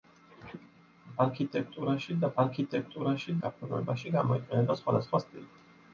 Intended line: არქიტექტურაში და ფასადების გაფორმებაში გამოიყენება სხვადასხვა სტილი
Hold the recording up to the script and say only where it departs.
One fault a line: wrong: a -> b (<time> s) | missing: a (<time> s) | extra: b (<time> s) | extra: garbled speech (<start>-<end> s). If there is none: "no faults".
wrong: ფასადების -> არქიტექტურაში (2.4 s)